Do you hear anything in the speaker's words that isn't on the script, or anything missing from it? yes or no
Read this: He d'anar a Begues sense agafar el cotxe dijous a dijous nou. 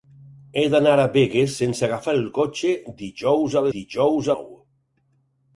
no